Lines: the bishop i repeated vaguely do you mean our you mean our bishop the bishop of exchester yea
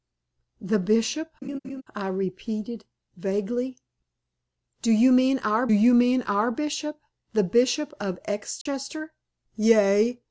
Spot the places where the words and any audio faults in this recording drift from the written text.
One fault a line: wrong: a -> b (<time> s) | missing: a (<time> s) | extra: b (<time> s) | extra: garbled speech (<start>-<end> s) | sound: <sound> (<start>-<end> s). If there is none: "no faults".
sound: laugh (1.4-1.8 s)
sound: dropout (8.6-8.7 s)